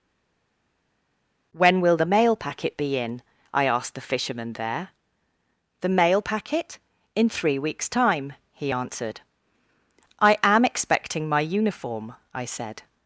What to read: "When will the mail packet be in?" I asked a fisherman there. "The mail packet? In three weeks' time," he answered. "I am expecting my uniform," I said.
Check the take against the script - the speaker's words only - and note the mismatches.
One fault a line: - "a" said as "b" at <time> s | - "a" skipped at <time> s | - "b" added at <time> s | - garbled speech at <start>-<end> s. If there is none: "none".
- "a" said as "the" at 3.9 s